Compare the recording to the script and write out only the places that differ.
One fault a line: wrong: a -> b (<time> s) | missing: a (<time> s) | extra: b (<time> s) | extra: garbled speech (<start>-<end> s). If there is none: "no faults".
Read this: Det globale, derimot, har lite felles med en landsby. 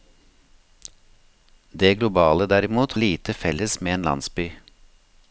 missing: har (2.9 s)